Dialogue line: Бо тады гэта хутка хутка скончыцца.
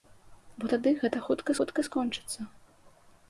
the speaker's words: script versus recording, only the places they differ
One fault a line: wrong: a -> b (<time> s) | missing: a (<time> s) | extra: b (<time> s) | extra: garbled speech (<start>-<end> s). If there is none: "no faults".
no faults